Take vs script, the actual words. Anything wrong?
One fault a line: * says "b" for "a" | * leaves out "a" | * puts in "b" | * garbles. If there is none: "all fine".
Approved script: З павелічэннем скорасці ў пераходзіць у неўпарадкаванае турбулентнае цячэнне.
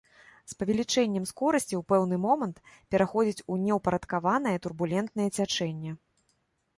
* puts in "пэўны момант"